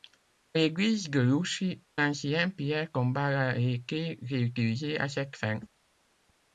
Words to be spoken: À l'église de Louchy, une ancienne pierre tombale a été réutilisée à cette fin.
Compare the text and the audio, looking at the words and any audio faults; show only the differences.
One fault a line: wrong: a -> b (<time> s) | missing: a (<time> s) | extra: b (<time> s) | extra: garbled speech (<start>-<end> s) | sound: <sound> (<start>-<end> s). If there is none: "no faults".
missing: une (1.8 s)